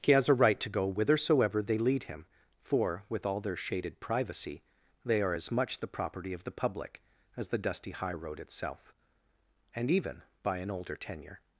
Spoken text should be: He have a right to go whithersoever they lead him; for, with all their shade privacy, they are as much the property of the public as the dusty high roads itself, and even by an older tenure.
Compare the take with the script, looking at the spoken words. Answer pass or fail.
fail